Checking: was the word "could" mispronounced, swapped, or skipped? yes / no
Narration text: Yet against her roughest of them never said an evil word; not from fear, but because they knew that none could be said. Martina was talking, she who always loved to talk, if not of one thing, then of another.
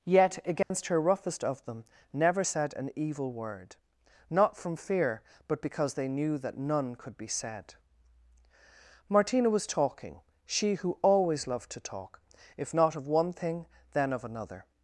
no